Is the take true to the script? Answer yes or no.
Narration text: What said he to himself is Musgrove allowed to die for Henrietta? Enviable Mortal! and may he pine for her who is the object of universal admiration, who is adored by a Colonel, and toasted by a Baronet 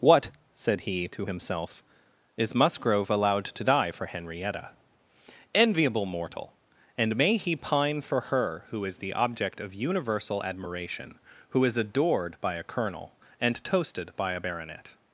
yes